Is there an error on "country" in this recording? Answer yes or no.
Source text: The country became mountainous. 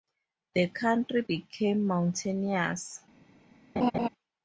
no